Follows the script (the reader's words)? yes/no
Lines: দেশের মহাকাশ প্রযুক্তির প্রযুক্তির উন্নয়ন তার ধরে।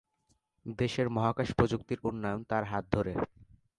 no